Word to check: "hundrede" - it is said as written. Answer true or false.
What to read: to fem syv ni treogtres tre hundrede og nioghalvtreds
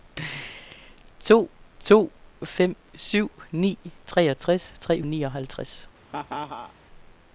false